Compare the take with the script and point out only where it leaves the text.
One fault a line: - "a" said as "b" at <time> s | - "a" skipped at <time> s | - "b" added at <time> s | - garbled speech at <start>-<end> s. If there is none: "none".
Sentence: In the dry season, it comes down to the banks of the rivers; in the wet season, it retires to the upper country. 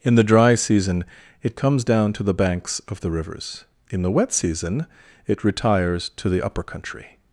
none